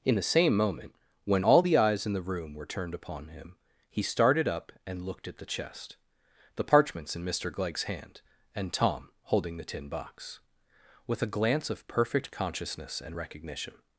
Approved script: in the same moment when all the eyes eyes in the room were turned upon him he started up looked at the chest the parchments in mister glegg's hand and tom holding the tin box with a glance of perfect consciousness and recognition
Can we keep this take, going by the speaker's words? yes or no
no